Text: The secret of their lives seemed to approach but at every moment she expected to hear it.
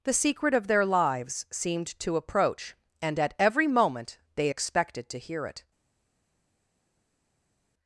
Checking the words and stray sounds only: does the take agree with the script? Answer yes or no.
no